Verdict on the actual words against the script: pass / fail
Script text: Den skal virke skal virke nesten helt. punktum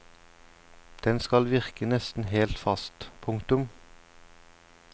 fail